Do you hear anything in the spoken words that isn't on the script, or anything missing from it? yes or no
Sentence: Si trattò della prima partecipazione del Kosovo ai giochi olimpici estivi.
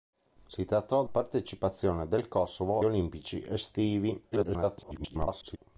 yes